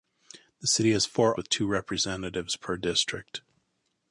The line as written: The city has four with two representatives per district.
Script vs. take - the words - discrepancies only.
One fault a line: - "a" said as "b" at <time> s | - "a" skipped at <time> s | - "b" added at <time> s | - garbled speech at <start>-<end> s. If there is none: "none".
none